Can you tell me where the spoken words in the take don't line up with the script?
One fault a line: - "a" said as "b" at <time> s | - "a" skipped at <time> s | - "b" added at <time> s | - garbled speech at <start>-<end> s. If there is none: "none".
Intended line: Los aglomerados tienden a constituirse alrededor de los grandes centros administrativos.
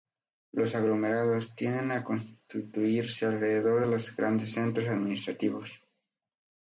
none